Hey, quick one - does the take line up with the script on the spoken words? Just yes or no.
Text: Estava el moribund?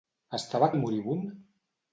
yes